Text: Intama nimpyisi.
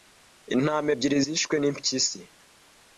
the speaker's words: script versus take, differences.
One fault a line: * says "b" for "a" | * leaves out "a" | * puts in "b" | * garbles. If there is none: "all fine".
* puts in "ebyiri zishwe"